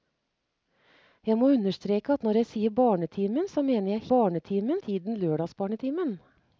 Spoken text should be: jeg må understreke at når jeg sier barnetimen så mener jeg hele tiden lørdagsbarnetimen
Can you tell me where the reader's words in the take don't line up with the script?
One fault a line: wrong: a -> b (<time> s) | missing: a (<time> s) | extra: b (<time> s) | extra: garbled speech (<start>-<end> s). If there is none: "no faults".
wrong: hele -> barnetimen (4.1 s)